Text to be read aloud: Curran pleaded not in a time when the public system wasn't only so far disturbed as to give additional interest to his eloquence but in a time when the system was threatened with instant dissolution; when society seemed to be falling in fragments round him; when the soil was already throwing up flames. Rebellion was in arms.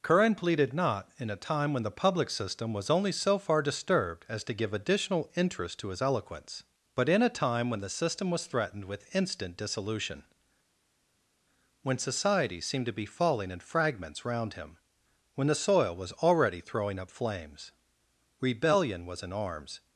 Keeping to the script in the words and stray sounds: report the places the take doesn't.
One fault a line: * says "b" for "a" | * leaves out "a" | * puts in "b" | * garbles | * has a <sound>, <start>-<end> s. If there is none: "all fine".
* says "was" for "wasn't"